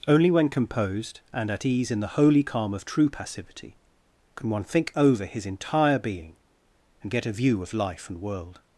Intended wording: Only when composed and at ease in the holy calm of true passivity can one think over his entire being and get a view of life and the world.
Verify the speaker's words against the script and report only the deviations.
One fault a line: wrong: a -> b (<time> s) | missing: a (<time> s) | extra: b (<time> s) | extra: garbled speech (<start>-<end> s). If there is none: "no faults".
missing: the (8.2 s)